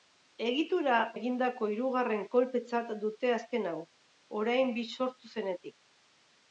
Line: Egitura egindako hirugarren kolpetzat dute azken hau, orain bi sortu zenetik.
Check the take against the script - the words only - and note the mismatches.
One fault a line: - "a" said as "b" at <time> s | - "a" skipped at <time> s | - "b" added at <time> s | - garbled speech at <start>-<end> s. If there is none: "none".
none